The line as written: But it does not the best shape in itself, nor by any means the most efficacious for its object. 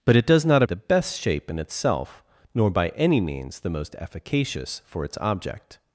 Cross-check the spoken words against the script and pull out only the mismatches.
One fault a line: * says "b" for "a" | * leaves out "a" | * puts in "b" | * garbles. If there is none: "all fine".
all fine